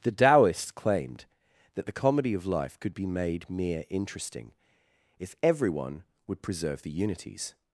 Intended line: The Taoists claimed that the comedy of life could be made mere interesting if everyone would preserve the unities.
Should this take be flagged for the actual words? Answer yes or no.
no